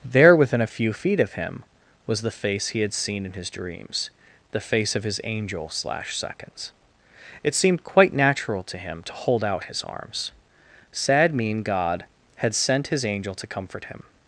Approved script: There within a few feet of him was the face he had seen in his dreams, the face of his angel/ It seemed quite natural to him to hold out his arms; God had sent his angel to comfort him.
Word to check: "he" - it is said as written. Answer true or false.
true